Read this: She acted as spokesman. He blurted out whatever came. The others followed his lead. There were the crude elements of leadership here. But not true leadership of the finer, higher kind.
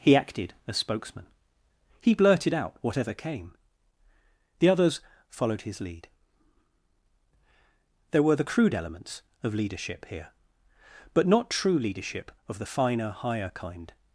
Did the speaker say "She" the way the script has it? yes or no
no